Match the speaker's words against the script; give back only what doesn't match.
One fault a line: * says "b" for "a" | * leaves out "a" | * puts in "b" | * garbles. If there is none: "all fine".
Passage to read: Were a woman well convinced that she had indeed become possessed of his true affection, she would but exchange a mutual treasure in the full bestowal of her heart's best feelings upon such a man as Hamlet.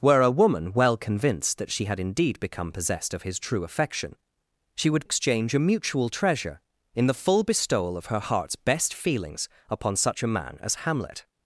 * leaves out "but"